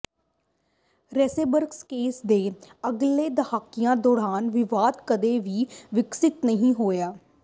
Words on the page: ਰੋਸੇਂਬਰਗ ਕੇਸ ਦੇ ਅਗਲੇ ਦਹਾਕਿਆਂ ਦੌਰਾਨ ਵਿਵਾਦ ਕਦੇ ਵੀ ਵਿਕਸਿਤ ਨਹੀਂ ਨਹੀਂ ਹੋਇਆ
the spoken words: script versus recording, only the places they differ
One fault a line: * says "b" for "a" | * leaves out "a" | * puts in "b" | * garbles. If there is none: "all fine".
* leaves out "ਨਹੀਂ"